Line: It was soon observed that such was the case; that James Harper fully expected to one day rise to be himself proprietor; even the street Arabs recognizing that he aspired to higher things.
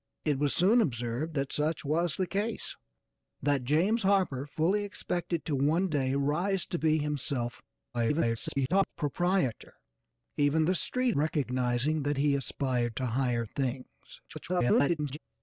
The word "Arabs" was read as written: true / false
false